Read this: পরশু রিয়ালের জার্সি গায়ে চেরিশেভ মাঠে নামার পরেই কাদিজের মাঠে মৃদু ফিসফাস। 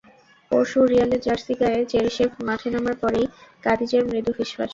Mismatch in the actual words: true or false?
true